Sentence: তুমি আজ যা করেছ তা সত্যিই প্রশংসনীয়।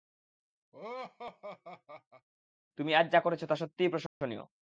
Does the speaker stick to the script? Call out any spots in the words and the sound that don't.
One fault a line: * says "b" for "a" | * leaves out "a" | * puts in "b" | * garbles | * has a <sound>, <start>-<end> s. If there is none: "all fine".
* has a laugh, 0.7-2.3 s
* has a dropout, 4.1-4.2 s